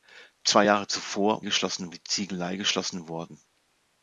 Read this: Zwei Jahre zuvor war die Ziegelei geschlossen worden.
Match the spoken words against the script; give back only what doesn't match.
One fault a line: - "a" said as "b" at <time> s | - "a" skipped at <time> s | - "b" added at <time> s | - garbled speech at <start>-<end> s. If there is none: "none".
- "war" said as "geschlossen" at 1.4 s